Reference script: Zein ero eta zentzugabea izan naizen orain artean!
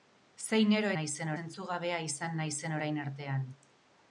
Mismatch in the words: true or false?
true